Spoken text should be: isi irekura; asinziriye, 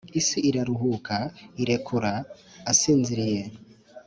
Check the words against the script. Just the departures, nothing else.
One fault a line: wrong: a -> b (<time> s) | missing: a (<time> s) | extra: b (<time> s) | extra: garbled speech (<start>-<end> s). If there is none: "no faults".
extra: iraruhuka (0.5 s)